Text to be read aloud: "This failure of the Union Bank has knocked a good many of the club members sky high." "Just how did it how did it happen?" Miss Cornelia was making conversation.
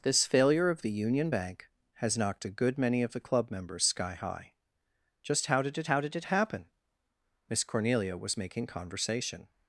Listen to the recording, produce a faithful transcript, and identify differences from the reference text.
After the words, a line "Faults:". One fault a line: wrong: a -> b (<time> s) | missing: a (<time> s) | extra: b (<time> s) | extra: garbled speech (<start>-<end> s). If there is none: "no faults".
"This failure of the Union Bank has knocked a good many of the club members sky high." "Just how did it how did it happen?" Miss Cornelia was making conversation.
Faults:
no faults